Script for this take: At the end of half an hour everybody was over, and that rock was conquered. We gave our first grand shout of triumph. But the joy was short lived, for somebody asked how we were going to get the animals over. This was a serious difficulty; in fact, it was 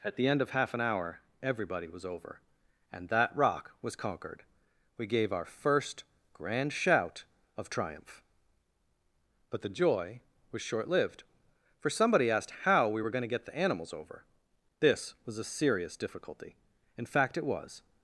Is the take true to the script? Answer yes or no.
yes